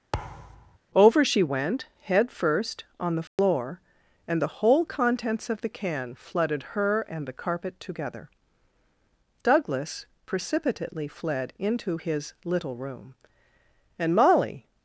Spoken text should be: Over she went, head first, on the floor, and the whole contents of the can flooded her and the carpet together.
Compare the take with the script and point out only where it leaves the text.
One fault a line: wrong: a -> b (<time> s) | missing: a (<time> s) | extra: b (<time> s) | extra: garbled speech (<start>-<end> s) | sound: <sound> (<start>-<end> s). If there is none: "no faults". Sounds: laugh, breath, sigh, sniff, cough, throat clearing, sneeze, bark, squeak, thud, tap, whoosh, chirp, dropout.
sound: thud (0.1-0.8 s)
sound: dropout (3.3-3.4 s)
extra: Douglas precipitately fled into his little room and Molly (9.4 s)